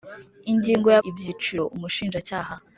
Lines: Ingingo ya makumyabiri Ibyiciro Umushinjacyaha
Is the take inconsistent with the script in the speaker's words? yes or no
yes